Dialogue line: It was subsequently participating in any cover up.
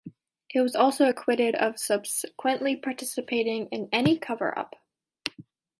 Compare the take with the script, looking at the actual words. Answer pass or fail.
fail